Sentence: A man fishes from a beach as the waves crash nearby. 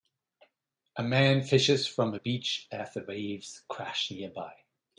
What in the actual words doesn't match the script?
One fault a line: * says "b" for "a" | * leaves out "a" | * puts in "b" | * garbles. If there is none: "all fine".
all fine